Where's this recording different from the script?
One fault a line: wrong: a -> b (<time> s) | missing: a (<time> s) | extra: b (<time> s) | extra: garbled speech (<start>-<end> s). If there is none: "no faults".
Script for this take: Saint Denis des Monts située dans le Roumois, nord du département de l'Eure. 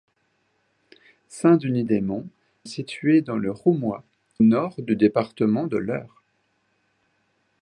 no faults